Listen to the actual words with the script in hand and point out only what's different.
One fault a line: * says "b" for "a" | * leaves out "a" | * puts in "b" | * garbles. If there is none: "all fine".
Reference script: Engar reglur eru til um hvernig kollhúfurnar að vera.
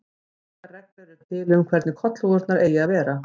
* puts in "eigi"